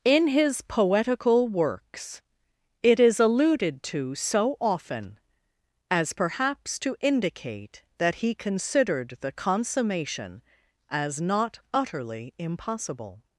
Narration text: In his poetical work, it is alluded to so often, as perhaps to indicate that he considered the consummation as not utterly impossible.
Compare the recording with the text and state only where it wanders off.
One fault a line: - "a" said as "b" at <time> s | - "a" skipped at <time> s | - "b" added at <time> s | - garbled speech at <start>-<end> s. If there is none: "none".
- "work" said as "works" at 1.5 s